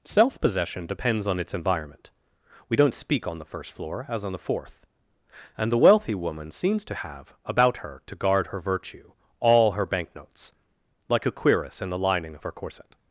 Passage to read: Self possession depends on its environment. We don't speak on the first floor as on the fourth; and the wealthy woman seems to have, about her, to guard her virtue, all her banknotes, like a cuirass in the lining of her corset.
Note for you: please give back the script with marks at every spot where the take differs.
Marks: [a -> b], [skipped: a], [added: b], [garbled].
Self possession depends on its environment. We don't speak on the first floor as on the fourth; and the wealthy woman seems to have, about her, to guard her virtue, all her banknotes, like a cuirass in the lining of her corset.